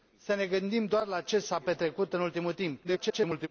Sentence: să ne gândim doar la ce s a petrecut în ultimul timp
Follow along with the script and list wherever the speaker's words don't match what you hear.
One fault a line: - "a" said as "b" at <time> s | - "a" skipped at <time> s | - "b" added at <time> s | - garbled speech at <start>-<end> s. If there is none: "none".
- garbled speech at 2.8-3.5 s